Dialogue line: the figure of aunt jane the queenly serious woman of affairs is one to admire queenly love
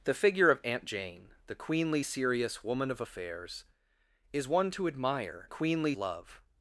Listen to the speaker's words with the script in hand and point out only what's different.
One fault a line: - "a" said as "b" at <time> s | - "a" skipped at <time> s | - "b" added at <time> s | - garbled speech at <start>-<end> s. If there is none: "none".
none